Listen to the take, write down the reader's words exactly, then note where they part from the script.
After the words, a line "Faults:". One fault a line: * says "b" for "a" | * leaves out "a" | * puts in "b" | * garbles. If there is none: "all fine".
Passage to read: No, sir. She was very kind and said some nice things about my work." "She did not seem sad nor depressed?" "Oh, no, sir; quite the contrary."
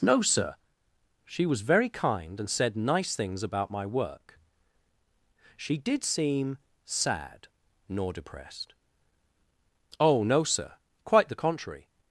No, sir. She was very kind and said nice things about my work." "She did seem sad nor depressed?" "Oh, no, sir; quite the contrary."
Faults:
* leaves out "some"
* leaves out "not"